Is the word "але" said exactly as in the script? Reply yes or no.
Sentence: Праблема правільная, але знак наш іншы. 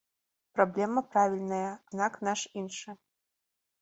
no